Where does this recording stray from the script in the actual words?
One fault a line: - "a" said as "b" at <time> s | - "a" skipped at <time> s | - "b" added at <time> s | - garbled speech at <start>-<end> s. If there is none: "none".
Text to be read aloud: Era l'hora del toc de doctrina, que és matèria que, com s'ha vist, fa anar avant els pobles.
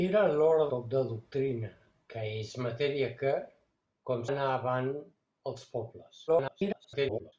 - "del" skipped at 0.7 s
- "s'ha vist fa" skipped at 4.2 s
- garbled speech at 6.3-7.3 s